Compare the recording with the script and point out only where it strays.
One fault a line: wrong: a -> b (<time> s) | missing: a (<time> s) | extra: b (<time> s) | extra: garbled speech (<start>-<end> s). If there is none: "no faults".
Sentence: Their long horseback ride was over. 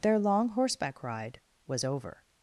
no faults